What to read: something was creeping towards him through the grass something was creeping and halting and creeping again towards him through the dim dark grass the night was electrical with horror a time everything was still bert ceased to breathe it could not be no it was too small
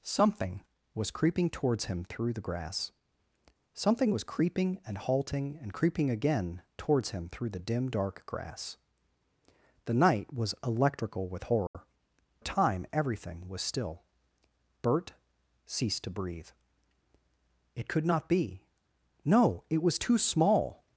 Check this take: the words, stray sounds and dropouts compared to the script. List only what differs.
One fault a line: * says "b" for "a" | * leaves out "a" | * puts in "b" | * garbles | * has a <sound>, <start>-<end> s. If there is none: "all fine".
* has a dropout, 11.7-11.7 s